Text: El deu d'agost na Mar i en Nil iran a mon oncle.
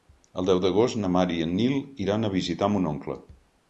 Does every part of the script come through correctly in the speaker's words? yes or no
no